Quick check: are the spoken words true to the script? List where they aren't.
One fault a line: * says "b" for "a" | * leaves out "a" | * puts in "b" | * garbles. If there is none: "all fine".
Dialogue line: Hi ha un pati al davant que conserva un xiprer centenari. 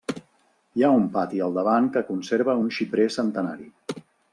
all fine